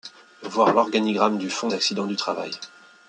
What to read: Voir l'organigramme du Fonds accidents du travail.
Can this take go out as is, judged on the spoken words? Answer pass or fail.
pass